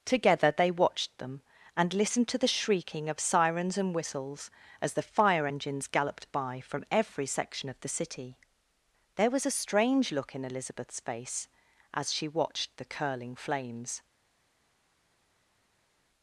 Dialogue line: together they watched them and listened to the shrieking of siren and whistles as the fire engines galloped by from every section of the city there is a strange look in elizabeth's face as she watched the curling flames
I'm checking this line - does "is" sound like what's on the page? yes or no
no